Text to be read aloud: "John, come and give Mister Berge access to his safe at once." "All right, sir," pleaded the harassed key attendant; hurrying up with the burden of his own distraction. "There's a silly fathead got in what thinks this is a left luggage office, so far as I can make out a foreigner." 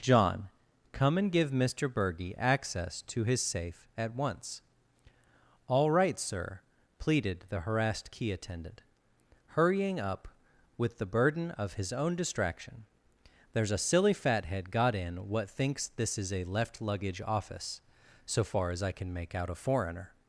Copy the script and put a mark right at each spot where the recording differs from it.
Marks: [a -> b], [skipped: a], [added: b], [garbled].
"John, come and give Mister Berge access to his safe at once." "All right, sir," pleaded the harassed key attendant; hurrying up with the burden of his own distraction. "There's a silly fathead got in what thinks this is a left luggage office, so far as I can make out a foreigner."